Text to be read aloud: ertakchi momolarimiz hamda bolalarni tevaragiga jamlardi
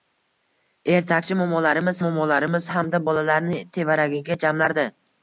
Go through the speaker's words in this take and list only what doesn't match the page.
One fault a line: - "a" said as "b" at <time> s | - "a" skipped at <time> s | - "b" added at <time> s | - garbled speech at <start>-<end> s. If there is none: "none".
- "momolarimiz" added at 2.1 s